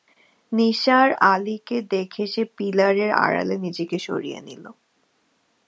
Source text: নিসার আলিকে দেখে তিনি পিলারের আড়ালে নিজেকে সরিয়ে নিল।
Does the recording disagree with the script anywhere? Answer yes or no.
yes